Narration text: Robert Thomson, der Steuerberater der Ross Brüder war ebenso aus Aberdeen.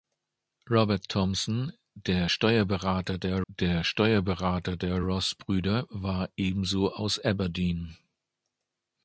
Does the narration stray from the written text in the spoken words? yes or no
yes